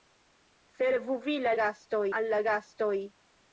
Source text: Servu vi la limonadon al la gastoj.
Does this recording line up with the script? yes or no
no